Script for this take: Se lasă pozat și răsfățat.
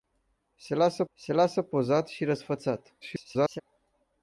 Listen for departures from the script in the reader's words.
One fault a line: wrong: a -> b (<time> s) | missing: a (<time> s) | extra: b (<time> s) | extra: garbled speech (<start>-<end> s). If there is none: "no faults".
extra: se lasă (1.1 s)
extra: garbled speech (3.0-3.6 s)